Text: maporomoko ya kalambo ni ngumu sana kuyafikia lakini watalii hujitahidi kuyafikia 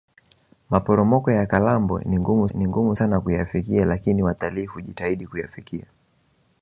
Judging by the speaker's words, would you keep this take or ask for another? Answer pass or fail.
fail